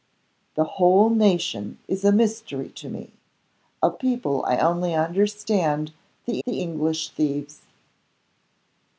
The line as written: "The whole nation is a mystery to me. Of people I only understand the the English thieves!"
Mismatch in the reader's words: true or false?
false